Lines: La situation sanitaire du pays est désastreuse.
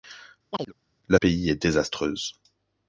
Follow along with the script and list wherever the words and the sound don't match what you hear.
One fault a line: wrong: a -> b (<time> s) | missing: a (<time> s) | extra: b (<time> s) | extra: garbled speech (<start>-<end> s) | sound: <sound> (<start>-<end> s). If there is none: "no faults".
sound: chirp (0.5-0.7 s)
missing: situation sanitaire du (1.2 s)